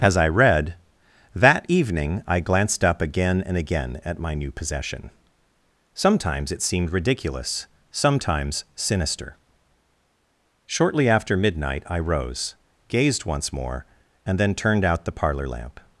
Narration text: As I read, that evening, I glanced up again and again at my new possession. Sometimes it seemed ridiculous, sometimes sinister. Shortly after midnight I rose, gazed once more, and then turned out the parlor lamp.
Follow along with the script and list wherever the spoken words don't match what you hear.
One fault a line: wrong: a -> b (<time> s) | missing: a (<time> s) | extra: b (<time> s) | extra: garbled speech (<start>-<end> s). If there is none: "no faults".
no faults